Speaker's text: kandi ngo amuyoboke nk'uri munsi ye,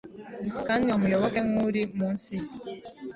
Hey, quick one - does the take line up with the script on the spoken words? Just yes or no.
no